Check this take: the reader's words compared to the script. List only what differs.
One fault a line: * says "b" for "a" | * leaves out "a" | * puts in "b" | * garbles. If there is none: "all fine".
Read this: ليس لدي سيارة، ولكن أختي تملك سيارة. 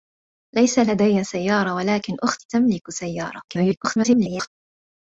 * garbles